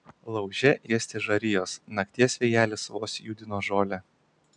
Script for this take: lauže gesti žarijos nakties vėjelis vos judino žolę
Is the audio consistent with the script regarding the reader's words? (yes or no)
yes